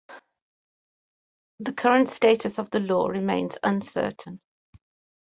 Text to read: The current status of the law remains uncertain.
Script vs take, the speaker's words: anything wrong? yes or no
no